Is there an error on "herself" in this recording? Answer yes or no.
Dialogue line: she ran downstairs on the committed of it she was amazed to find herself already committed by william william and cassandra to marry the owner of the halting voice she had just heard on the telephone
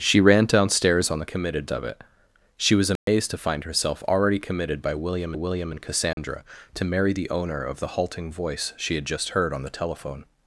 no